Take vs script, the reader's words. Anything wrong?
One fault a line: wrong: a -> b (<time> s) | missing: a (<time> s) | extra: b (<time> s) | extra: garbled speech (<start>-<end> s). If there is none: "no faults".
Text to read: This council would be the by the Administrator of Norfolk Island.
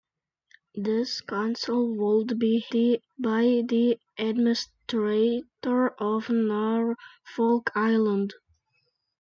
no faults